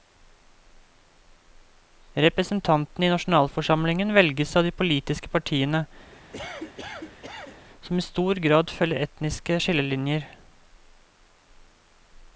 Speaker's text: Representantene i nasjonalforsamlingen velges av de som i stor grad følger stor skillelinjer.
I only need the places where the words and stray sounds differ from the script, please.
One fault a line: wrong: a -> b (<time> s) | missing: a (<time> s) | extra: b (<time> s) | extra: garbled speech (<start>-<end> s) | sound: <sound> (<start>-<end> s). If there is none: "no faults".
extra: politiske partiene (4.8 s)
sound: cough (6.1-7.7 s)
wrong: stor -> etniske (9.1 s)